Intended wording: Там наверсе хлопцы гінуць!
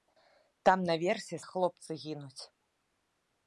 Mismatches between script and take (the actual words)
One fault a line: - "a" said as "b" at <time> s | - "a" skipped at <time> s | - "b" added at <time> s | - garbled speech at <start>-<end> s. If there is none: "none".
none